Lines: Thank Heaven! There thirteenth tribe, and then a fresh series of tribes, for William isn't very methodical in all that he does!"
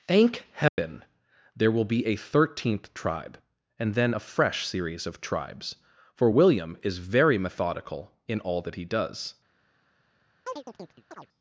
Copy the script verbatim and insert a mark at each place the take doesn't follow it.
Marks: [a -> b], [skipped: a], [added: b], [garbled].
Thank Heaven! There [added: will be a] thirteenth tribe, and then a fresh series of tribes, for William [isn't -> is] very methodical in all that he does!"